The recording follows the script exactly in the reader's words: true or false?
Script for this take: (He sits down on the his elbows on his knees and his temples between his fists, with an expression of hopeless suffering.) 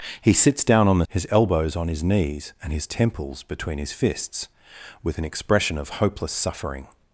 true